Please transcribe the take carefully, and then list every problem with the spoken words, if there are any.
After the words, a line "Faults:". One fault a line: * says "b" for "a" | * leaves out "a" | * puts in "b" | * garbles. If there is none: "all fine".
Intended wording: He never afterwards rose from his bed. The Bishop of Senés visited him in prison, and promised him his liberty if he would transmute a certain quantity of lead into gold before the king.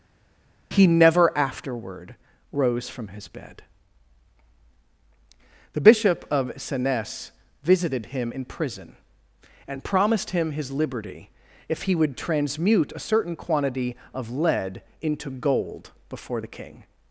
He never afterward rose from his bed. The Bishop of Senés visited him in prison, and promised him his liberty if he would transmute a certain quantity of lead into gold before the king.
Faults:
* says "afterward" for "afterwards"